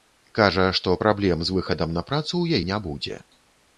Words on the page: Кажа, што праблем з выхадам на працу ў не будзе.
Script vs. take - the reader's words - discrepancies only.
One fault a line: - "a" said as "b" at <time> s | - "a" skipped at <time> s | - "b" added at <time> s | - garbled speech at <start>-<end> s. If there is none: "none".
none